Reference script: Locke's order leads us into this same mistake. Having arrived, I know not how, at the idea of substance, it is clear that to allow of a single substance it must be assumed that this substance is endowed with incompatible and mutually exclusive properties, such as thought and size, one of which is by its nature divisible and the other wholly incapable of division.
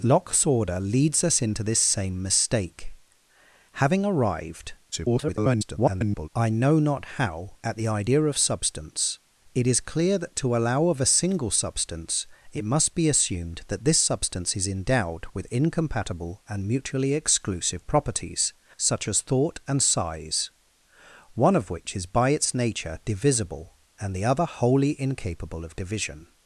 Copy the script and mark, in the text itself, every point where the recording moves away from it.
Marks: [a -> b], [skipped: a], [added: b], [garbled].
Locke's order leads us into this same mistake. Having arrived, [garbled] I know not how, at the idea of substance, it is clear that to allow of a single substance it must be assumed that this substance is endowed with incompatible and mutually exclusive properties, such as thought and size, one of which is by its nature divisible and the other wholly incapable of division.